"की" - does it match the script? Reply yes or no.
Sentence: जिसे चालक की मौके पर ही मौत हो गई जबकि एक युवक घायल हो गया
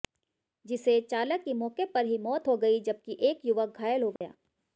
yes